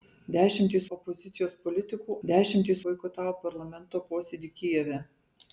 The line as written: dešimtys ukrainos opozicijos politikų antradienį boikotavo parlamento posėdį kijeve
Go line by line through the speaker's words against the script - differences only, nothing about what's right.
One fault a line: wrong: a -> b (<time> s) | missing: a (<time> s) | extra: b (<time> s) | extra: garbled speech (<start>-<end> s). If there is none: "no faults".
missing: ukrainos (0.9 s)
wrong: antradienį -> dešimtys (2.3 s)